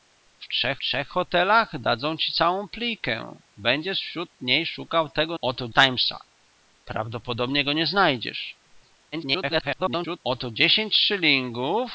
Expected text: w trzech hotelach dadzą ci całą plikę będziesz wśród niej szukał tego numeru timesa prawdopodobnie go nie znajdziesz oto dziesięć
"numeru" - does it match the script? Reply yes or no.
no